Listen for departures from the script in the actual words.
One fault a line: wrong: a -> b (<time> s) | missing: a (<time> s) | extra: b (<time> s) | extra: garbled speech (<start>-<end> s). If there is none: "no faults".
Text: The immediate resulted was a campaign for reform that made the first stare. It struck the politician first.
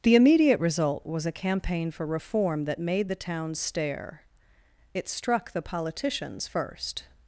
wrong: resulted -> result (0.6 s)
wrong: first -> town (3.2 s)
wrong: politician -> politicians (5.6 s)